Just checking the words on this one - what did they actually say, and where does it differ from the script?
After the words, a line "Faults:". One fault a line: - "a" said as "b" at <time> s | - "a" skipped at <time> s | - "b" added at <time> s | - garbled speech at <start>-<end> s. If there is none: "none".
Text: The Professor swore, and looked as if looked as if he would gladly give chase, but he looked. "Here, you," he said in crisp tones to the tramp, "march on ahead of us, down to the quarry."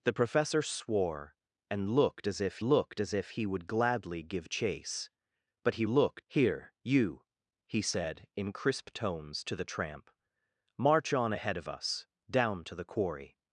The Professor swore, and looked as if looked as if he would gladly give chase, but he looked. "Here, you," he said in crisp tones to the tramp, "march on ahead of us, down to the quarry."
Faults:
none